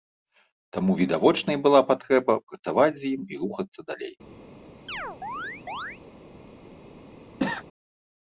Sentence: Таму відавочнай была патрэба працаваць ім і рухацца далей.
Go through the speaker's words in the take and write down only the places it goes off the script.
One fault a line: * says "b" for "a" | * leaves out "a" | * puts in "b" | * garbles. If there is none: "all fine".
* puts in "з"